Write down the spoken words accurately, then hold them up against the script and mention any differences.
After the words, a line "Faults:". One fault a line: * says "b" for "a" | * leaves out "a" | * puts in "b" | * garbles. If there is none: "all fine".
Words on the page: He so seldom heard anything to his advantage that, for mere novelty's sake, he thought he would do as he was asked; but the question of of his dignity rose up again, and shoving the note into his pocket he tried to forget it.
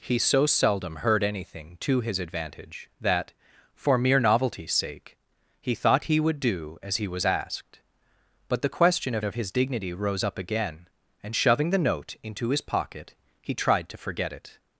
He so seldom heard anything to his advantage that, for mere novelty's sake, he thought he would do as he was asked; but the question of of his dignity rose up again, and shoving the note into his pocket he tried to forget it.
Faults:
all fine